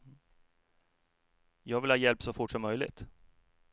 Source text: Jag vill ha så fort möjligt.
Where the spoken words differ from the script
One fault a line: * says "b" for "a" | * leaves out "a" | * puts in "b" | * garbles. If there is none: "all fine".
* puts in "hjälp"
* puts in "som"